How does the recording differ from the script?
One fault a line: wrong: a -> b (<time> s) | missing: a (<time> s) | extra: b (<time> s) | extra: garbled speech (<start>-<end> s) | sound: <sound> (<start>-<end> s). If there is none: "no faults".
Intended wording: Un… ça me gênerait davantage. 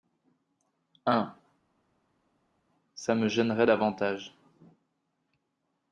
no faults